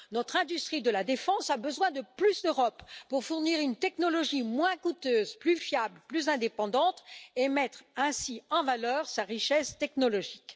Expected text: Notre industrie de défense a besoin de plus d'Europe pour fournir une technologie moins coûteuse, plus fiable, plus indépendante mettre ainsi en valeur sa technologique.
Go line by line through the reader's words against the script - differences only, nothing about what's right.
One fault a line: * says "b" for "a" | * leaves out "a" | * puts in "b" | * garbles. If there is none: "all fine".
* puts in "la"
* puts in "et"
* puts in "richesse"